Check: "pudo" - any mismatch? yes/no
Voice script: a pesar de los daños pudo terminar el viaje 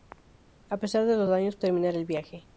yes